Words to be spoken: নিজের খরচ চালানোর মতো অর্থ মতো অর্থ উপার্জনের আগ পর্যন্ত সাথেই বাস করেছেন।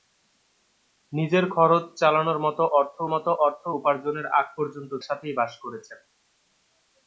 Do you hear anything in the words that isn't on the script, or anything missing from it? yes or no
no